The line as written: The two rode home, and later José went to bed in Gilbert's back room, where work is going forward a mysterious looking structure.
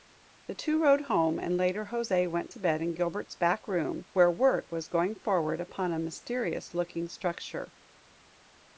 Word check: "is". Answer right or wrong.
wrong